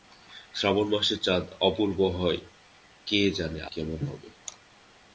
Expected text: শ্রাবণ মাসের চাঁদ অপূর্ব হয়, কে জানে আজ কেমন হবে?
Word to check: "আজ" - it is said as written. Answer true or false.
false